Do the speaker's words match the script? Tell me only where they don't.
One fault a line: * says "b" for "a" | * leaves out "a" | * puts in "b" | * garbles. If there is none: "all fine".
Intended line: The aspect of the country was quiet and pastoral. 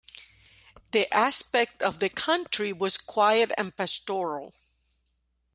all fine